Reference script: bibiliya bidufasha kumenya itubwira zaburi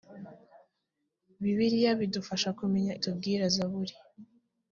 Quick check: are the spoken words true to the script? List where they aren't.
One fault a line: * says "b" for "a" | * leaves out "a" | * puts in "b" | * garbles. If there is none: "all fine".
all fine